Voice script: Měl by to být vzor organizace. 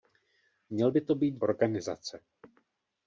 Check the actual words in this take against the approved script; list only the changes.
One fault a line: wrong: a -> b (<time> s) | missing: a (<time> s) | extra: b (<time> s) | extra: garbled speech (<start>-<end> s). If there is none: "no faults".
missing: vzor (1.4 s)